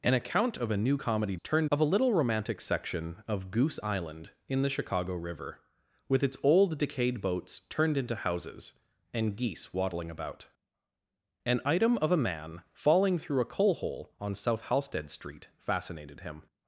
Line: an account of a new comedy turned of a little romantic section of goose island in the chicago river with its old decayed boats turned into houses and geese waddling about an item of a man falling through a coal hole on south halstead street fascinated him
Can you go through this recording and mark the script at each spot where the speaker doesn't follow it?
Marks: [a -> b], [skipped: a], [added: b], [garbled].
an account of a new comedy turned of a little romantic section of goose island in the chicago river with its old decayed boats turned into houses and geese waddling about an item of a man falling through a coal hole on south halstead street fascinated him